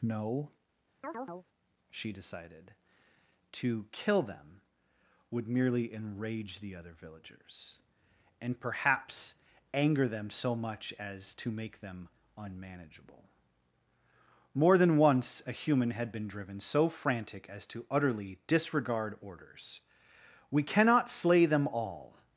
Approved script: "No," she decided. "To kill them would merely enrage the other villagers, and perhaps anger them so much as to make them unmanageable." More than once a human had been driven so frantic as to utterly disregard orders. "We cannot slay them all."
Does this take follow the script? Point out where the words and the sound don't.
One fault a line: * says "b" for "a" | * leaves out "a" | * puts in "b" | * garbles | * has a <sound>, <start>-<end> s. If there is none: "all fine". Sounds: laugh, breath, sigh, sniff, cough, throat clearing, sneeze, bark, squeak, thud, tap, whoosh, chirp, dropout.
* has a chirp, 1.0-1.5 s